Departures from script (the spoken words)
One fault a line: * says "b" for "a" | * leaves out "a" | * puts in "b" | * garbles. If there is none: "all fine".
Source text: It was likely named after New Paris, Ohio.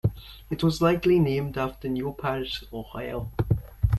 all fine